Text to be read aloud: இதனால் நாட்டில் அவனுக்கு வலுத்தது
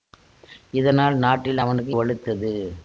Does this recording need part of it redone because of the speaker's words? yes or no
no